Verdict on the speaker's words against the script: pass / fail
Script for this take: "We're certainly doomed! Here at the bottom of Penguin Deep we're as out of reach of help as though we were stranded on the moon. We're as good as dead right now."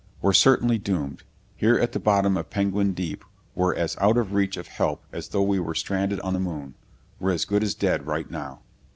pass